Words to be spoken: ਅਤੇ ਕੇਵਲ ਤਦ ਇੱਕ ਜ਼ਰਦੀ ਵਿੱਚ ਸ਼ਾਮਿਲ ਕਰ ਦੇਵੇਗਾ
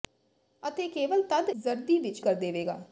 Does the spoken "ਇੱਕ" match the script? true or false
false